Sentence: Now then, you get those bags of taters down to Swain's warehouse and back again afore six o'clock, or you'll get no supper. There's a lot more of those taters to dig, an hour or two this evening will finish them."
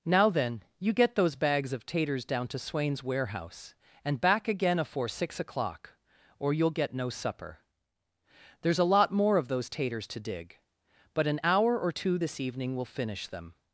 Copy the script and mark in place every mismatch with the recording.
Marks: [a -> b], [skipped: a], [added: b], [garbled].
Now then, you get those bags of taters down to Swain's warehouse and back again afore six o'clock, or you'll get no supper. There's a lot more of those taters to dig, [added: but] an hour or two this evening will finish them."